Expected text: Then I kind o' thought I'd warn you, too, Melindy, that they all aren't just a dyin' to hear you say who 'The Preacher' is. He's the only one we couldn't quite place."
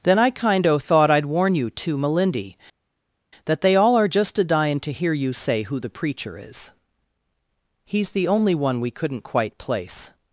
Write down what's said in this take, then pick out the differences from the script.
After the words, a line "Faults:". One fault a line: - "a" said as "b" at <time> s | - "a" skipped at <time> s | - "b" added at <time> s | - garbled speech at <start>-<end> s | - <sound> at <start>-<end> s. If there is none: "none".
Then I kind o' thought I'd warn you, too, Melindy, that they all are just a dyin' to hear you say who 'The Preacher' is. He's the only one we couldn't quite place."
Faults:
- "aren't" said as "are" at 4.0 s